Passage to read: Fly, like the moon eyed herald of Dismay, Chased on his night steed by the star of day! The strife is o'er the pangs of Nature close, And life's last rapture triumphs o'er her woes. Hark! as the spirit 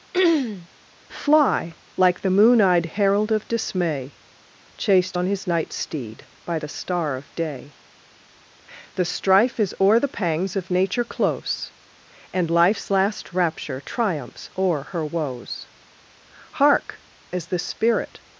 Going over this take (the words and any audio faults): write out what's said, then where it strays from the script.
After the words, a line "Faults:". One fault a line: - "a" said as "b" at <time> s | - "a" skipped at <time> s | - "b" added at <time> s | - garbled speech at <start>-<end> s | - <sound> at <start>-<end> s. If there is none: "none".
Fly, like the moon eyed herald of Dismay, Chased on his night steed by the star of day! The strife is o'er the pangs of Nature close, And life's last rapture triumphs o'er her woes. Hark! as the spirit
Faults:
- throat clearing at 0.1-0.7 s